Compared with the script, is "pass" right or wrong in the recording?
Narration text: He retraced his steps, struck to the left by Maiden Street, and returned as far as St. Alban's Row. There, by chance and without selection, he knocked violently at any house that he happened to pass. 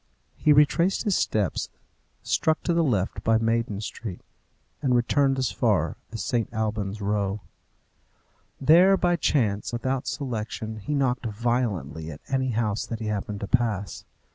right